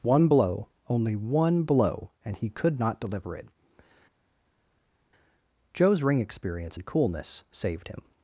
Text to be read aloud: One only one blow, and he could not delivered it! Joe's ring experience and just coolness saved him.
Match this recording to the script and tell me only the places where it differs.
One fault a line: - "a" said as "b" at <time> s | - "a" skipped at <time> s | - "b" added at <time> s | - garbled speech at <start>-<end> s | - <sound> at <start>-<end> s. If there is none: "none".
- "blow" added at 0.3 s
- "delivered" said as "deliver" at 3.0 s
- "just" skipped at 6.8 s